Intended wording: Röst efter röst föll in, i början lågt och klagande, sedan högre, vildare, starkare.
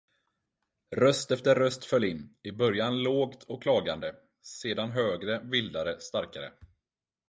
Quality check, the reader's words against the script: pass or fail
pass